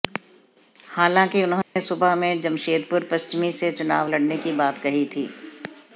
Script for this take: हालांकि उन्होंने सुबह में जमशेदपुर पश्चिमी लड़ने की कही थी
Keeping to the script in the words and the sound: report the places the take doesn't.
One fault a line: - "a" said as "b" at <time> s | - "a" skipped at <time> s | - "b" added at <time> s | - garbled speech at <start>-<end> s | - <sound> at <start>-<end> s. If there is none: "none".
- dropout at 1.6-1.8 s
- "से चुनाव" added at 3.5 s
- "बात" added at 4.5 s